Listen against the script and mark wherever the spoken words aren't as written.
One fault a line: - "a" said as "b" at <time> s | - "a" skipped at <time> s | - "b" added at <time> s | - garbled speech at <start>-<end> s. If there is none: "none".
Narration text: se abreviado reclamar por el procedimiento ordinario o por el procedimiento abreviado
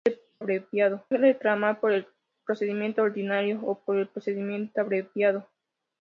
none